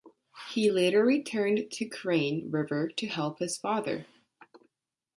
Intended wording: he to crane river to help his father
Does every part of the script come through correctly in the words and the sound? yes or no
no